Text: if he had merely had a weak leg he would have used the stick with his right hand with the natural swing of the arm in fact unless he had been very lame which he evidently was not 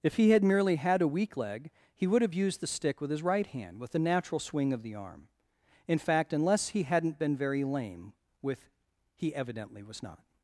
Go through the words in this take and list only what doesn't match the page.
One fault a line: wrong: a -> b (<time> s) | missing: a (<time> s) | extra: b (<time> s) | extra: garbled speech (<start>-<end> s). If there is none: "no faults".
wrong: had -> hadn't (6.8 s)
wrong: which -> with (8.4 s)